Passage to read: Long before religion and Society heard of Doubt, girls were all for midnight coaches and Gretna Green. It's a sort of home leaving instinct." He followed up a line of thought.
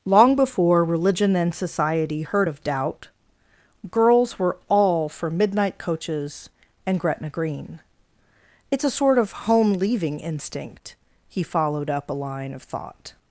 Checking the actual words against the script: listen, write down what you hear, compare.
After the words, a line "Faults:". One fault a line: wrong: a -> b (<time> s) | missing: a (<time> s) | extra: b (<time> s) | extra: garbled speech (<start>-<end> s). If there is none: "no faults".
Long before religion and Society heard of Doubt, girls were all for midnight coaches and Gretna Green. It's a sort of home leaving instinct." He followed up a line of thought.
Faults:
no faults